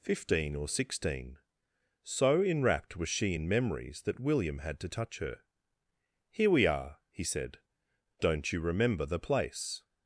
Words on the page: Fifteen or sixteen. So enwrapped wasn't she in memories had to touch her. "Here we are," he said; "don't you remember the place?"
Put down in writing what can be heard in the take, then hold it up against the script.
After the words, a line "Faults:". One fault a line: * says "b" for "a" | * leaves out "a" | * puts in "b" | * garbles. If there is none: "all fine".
Fifteen or sixteen. So enwrapped was she in memories that William had to touch her. "Here we are," he said; "don't you remember the place?"
Faults:
* says "was" for "wasn't"
* puts in "that William"